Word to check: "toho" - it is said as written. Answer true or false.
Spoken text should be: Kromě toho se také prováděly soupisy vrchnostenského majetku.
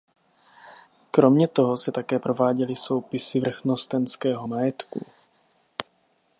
true